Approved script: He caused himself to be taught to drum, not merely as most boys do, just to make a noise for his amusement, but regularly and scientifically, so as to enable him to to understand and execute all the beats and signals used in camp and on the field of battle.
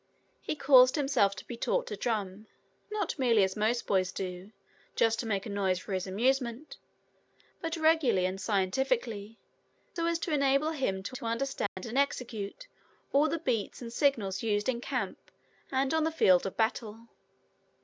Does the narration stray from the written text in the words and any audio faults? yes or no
yes